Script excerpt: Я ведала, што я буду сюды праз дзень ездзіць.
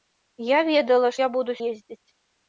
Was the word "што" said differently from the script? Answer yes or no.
yes